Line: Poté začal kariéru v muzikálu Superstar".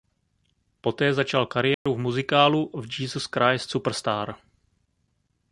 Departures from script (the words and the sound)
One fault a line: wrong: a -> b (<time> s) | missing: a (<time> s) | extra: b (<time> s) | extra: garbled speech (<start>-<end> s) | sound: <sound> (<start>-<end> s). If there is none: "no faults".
sound: dropout (1.7-1.9 s)
extra: v Jesus Christ (2.7 s)